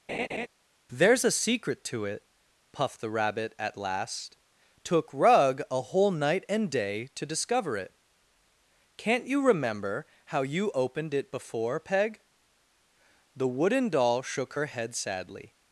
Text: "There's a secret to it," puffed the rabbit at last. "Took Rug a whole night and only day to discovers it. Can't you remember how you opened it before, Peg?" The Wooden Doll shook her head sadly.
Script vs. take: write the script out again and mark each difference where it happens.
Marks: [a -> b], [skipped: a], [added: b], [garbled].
"There's a secret to it," puffed the rabbit at last. "Took Rug a whole night and [skipped: only] day to [discovers -> discover] it. Can't you remember how you opened it before, Peg?" The Wooden Doll shook her head sadly.